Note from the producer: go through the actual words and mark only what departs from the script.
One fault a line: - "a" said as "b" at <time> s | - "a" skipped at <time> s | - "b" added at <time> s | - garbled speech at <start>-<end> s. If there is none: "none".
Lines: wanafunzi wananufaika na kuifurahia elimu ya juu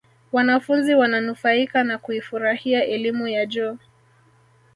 none